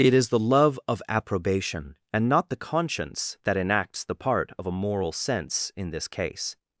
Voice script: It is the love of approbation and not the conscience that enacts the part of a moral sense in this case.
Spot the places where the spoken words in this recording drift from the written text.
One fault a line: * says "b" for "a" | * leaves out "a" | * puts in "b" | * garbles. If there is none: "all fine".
all fine